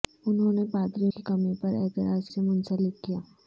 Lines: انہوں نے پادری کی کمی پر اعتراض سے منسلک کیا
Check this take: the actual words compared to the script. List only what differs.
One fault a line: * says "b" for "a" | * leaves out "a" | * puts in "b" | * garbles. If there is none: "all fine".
all fine